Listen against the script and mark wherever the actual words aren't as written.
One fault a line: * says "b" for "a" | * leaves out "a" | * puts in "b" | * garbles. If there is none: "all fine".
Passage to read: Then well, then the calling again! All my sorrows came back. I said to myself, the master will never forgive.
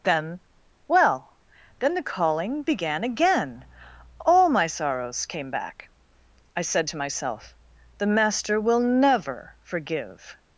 * puts in "began"